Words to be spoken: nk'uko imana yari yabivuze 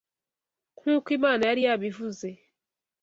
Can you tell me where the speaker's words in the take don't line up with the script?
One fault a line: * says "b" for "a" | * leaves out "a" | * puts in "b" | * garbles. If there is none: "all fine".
all fine